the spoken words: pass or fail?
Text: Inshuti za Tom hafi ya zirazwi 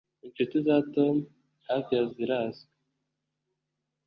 pass